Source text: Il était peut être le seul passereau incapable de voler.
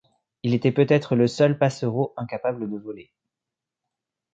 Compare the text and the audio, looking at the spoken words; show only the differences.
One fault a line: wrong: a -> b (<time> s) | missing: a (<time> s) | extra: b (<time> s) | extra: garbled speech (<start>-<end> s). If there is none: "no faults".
no faults